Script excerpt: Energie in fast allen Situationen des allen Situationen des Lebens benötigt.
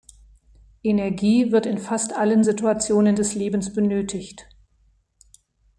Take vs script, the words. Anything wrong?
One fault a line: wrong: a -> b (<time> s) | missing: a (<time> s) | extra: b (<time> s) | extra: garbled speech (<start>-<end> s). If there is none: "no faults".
extra: wird (1.5 s)
missing: allen Situationen des (3.3 s)